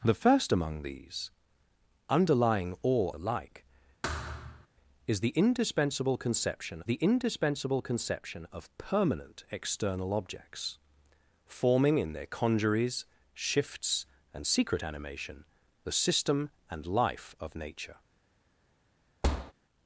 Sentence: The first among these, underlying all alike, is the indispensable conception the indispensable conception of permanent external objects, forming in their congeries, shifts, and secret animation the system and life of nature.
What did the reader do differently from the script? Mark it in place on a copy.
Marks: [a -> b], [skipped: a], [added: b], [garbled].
The first among these, underlying all alike, is the indispensable conception the indispensable conception of permanent external objects, forming in their congeries, shifts, and secret animation the system and life of nature.